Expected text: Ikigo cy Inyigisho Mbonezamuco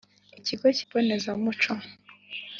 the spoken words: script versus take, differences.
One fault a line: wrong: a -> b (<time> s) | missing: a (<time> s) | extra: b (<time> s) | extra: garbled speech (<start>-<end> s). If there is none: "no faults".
missing: Inyigisho (0.8 s)